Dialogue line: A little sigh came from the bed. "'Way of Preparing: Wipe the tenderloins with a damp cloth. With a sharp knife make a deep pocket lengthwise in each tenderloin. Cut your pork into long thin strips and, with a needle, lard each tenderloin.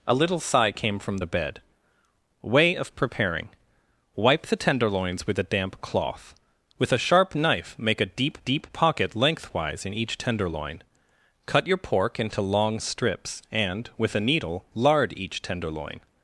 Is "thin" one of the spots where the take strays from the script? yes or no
yes